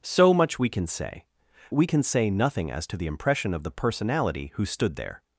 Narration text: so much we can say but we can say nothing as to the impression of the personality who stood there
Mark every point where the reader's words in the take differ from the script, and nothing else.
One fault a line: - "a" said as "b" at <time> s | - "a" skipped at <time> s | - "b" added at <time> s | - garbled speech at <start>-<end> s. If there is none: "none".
- "but" skipped at 1.2 s